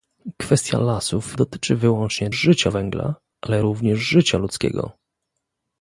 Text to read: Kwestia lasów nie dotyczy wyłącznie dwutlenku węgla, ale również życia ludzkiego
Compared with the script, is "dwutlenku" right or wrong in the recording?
wrong